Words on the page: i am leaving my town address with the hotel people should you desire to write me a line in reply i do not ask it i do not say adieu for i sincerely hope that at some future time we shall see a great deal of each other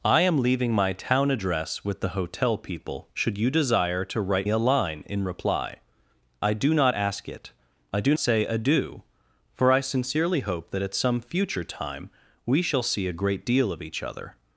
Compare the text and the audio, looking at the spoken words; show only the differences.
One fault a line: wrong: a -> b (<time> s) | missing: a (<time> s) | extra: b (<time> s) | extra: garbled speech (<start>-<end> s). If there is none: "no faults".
missing: me (4.5 s)
missing: not (8.1 s)